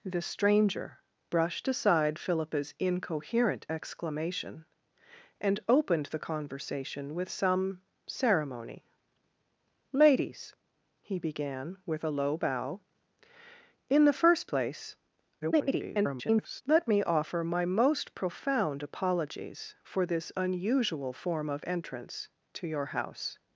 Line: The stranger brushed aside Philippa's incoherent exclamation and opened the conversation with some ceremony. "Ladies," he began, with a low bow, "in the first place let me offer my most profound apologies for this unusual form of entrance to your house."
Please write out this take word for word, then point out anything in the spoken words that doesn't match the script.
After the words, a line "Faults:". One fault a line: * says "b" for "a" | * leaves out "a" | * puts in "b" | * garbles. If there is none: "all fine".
The stranger brushed aside Philippa's incoherent exclamation and opened the conversation with some ceremony. "Ladies," he began, with a low bow, "in the first place [garbled] let me offer my most profound apologies for this unusual form of entrance to your house."
Faults:
* garbles